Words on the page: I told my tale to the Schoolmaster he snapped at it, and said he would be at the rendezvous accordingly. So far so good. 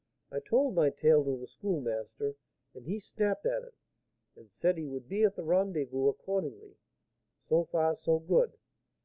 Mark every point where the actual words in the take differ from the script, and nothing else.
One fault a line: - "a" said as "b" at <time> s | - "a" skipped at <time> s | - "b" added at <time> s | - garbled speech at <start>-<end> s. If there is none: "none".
- "and" added at 2.7 s